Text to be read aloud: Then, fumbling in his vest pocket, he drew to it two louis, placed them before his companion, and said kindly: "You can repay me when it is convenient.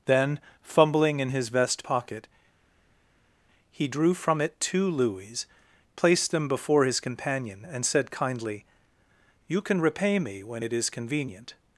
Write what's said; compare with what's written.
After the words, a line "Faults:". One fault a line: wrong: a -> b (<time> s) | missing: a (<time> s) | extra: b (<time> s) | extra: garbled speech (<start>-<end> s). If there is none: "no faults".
Then, fumbling in his vest pocket, he drew from it two louis, placed them before his companion, and said kindly: "You can repay me when it is convenient.
Faults:
wrong: to -> from (4.1 s)